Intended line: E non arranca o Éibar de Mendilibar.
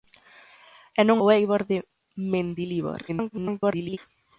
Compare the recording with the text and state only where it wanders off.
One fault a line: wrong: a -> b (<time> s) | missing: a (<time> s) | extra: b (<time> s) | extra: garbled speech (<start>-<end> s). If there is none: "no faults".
missing: arranca (1.2 s)
extra: garbled speech (3.1-4.0 s)